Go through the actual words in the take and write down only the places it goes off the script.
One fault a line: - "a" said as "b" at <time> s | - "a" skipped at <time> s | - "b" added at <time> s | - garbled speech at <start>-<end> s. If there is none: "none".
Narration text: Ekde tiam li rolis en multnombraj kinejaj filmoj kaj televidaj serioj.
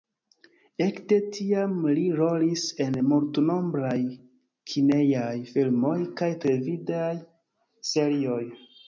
none